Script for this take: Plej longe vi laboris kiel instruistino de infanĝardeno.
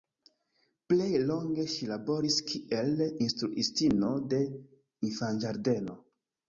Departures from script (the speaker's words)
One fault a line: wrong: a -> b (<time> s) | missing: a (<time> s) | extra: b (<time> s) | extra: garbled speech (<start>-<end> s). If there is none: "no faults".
wrong: vi -> ŝi (1.8 s)